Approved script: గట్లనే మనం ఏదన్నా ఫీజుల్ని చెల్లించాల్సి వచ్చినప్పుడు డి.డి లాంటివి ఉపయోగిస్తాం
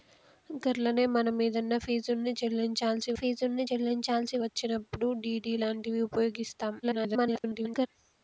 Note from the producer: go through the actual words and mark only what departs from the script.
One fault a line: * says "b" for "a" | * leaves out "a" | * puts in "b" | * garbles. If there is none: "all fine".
* puts in "ఫీజుల్ని చెల్లించాల్సి"
* garbles